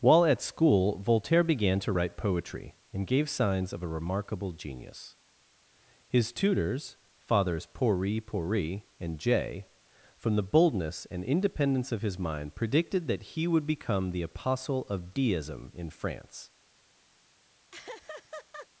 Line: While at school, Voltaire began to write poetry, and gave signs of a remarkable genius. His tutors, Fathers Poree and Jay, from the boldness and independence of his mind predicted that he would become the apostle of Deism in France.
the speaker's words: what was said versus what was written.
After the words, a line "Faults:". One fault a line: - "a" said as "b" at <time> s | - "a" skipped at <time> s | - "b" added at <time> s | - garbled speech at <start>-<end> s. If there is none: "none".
While at school, Voltaire began to write poetry, and gave signs of a remarkable genius. His tutors, Fathers Poree Poree and Jay, from the boldness and independence of his mind predicted that he would become the apostle of Deism in France.
Faults:
- "Poree" added at 8.2 s